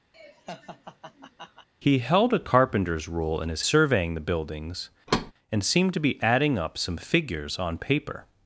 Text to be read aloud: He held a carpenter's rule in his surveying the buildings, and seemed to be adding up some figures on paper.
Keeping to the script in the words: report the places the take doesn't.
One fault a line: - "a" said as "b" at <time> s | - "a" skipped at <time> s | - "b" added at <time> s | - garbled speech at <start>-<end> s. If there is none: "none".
none